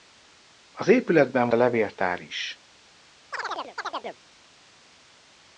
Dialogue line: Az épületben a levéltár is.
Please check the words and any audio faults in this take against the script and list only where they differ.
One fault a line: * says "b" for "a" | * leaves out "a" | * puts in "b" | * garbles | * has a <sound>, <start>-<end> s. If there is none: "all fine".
* has a chirp, 3.3-4.2 s